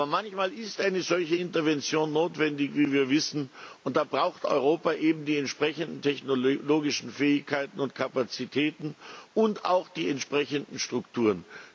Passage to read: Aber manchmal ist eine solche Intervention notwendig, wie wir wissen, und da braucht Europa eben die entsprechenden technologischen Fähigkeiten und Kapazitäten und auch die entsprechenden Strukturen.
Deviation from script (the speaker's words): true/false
false